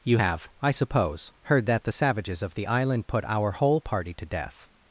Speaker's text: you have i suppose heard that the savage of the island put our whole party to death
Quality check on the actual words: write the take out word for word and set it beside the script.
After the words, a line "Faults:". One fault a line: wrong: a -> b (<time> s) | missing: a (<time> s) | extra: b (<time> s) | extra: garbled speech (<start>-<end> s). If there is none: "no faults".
you have i suppose heard that the savages of the island put our whole party to death
Faults:
wrong: savage -> savages (1.9 s)